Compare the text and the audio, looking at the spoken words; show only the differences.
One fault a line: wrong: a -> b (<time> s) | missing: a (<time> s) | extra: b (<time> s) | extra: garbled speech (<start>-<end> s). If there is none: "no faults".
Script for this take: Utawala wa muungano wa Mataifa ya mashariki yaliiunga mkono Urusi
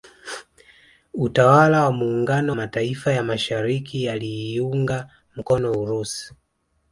missing: wa (2.5 s)